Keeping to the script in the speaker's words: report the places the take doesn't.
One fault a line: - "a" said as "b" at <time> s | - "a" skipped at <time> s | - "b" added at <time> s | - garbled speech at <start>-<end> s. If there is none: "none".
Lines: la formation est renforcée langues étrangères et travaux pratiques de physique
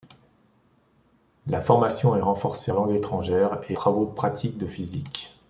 none